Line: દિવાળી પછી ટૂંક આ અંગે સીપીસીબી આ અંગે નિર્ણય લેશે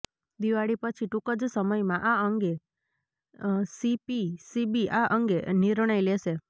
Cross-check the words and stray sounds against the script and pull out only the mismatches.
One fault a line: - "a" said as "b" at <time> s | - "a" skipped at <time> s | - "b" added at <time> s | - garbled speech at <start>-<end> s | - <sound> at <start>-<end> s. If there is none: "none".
- "જ સમયમાં" added at 1.4 s